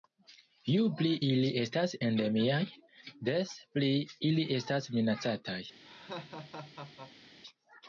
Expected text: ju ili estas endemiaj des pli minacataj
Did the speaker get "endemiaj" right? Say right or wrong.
right